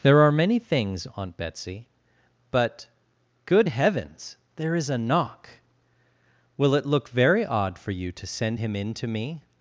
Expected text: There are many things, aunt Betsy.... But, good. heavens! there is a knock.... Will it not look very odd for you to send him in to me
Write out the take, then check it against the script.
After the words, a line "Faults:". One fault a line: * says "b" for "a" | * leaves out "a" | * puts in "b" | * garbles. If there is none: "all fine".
There are many things, aunt Betsy.... But, good. heavens! there is a knock.... Will it look very odd for you to send him in to me
Faults:
* leaves out "not"